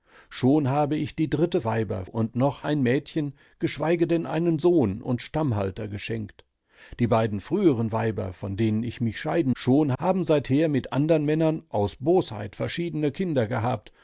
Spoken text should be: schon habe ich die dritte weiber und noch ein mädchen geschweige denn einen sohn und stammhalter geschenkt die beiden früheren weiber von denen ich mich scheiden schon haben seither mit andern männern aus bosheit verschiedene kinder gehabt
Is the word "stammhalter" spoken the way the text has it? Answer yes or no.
yes